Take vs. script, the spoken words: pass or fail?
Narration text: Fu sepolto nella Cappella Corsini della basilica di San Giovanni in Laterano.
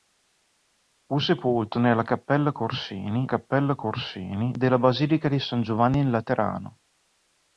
fail